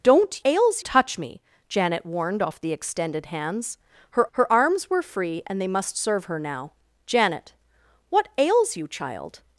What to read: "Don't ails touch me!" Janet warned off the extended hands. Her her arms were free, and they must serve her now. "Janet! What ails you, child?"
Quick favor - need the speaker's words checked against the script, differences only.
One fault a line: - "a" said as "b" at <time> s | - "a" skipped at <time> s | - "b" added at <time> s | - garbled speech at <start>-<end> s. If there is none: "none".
none